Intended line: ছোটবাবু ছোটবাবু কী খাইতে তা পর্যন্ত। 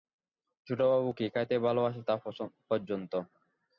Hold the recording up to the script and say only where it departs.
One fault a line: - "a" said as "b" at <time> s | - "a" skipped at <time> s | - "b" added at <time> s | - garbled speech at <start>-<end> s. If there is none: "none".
- "ছোটবাবু" skipped at 1.1 s
- "ভালোবাসে" added at 1.6 s